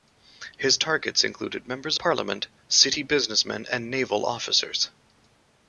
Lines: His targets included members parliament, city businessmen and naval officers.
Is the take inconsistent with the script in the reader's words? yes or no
no